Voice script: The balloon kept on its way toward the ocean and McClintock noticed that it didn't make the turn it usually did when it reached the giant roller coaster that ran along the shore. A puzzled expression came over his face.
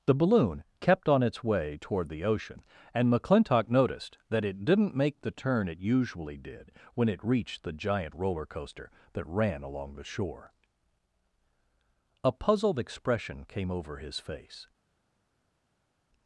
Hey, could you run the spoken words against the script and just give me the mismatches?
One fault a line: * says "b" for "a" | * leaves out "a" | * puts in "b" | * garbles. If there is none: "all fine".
all fine